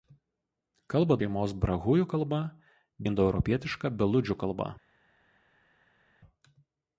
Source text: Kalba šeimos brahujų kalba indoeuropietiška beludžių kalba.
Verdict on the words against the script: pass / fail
pass